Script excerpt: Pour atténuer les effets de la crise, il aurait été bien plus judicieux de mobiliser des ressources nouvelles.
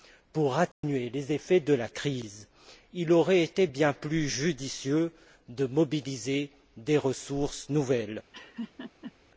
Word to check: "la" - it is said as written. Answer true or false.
true